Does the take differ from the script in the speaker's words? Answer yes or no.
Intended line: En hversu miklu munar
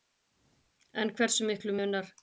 no